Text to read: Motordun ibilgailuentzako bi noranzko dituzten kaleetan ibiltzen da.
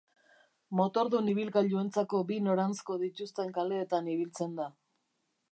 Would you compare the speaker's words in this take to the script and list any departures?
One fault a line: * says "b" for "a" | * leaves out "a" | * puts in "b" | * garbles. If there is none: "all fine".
all fine